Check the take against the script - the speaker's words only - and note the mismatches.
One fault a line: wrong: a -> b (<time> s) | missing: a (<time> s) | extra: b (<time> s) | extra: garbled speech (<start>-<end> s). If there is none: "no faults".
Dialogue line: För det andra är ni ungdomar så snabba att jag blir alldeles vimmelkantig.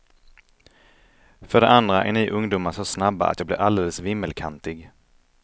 no faults